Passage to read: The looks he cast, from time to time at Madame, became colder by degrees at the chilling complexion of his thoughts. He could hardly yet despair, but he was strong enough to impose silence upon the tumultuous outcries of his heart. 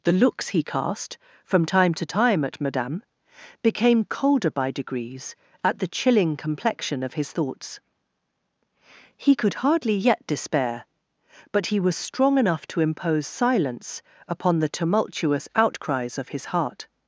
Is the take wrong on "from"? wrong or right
right